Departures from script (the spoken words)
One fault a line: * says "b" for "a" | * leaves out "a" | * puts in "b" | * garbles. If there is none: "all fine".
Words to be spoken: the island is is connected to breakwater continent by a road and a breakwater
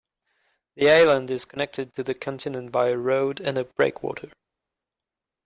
* leaves out "is"
* says "the" for "breakwater"